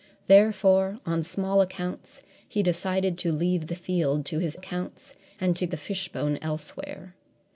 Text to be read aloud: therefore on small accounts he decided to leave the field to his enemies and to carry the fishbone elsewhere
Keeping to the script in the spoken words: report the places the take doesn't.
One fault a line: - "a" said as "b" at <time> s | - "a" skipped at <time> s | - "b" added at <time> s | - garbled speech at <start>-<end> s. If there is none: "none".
- "enemies" said as "accounts" at 4.5 s
- "carry" skipped at 5.7 s